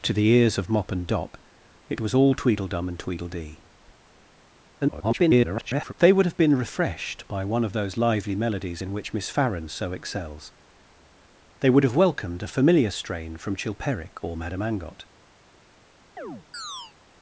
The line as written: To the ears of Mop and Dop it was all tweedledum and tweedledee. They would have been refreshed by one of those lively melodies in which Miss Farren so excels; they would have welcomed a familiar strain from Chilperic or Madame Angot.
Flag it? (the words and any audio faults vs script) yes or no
yes